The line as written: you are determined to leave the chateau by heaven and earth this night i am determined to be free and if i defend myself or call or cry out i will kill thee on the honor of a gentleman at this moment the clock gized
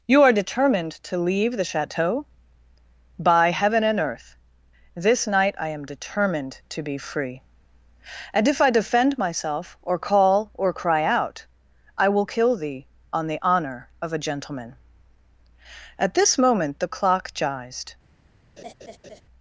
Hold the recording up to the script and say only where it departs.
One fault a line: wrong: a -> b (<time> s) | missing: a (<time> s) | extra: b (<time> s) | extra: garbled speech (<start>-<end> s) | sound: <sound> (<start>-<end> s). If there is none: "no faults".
sound: laugh (18.6-19.2 s)